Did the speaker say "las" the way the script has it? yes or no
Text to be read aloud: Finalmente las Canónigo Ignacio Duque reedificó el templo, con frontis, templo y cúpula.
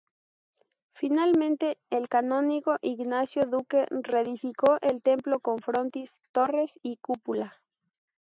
no